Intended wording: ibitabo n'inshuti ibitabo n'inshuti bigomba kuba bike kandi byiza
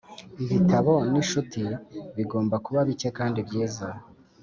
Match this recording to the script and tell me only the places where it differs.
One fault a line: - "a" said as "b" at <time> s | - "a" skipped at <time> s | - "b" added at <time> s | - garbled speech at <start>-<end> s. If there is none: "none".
- "ibitabo n'inshuti" skipped at 1.6 s